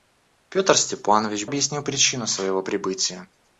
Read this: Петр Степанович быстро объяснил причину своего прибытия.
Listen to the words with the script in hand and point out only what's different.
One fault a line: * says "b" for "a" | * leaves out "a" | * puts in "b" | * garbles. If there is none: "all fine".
* leaves out "быстро"